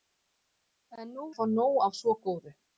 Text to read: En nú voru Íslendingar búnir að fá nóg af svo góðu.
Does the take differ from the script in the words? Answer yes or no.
yes